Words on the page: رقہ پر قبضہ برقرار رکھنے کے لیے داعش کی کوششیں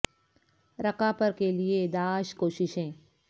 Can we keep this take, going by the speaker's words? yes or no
no